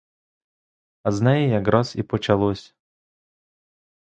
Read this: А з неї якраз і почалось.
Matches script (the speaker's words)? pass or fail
pass